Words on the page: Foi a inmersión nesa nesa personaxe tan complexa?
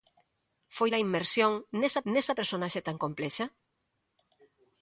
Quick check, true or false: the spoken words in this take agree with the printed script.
true